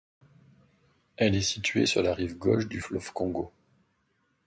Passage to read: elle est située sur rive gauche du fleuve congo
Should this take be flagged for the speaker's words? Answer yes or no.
yes